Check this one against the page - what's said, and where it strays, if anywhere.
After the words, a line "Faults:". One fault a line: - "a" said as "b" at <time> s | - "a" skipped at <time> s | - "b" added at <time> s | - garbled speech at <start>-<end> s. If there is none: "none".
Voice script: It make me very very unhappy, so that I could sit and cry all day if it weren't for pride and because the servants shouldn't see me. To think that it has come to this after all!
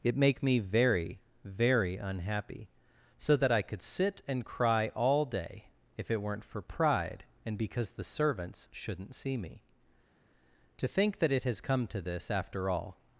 It make me very very unhappy, so that I could sit and cry all day if it weren't for pride and because the servants shouldn't see me. To think that it has come to this after all!
Faults:
none